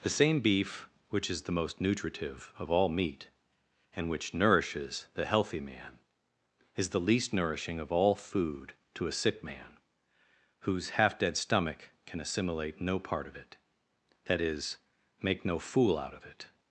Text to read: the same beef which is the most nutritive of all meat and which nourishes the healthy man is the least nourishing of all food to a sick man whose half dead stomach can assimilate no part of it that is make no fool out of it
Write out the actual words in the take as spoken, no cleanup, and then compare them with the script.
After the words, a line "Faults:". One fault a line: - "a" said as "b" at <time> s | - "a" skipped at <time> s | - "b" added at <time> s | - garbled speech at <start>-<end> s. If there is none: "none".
the same beef which is the most nutritive of all meat and which nourishes the healthy man is the least nourishing of all food to a sick man whose half dead stomach can assimilate no part of it that is make no fool out of it
Faults:
none